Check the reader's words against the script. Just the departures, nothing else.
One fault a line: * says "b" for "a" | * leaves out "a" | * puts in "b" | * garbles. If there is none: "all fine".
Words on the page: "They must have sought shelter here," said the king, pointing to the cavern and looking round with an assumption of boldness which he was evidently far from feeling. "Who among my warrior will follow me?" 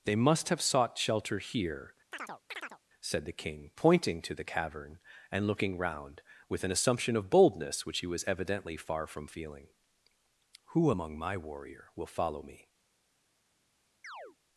all fine